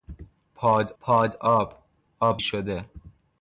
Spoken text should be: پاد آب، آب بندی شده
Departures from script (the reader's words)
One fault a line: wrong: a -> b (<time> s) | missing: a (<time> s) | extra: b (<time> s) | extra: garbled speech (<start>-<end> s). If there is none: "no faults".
extra: پاد (1.0 s)
missing: بندی (2.4 s)